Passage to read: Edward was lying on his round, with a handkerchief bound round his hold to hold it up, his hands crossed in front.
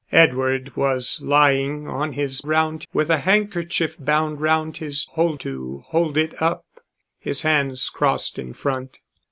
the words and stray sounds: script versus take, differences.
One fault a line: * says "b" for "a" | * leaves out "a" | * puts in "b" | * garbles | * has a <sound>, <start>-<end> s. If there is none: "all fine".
all fine